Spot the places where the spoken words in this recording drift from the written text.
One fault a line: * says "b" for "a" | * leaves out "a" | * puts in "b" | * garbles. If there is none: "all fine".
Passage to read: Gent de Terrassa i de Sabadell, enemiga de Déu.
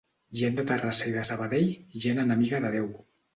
* puts in "gent"